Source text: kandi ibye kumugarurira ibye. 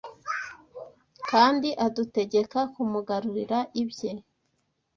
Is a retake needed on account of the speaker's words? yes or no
yes